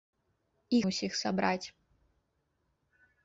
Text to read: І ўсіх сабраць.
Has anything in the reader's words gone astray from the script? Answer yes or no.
no